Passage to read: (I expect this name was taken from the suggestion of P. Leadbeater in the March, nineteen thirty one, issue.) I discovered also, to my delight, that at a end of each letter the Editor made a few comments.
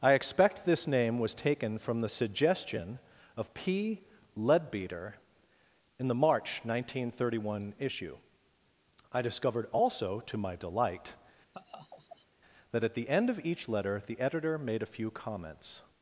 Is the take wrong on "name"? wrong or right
right